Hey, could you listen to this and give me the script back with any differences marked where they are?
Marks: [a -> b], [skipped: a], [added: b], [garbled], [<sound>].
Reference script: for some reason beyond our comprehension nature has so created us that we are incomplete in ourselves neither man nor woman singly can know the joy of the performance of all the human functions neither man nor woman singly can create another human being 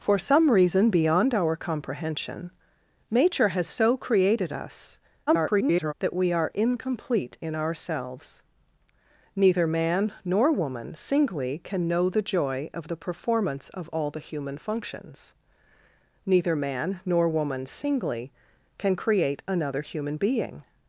for some reason beyond our comprehension nature has so created us [garbled] that we are incomplete in ourselves neither man nor woman singly can know the joy of the performance of all the human functions neither man nor woman singly can create another human being